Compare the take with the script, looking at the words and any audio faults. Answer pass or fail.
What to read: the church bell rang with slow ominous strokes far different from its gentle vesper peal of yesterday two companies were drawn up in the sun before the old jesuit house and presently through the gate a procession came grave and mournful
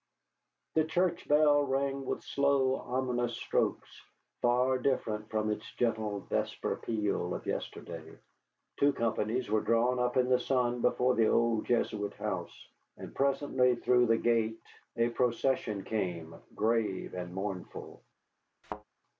fail